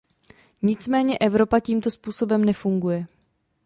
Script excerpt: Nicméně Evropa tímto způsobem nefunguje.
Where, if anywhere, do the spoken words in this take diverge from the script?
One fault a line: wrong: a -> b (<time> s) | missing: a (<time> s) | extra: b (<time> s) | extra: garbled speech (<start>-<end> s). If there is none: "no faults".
no faults